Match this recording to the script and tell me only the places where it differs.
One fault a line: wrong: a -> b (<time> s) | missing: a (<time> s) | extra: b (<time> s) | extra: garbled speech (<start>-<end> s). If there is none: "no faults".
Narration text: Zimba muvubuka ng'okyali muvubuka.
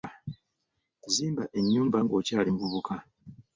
wrong: muvubuka -> ennyumba (1.6 s)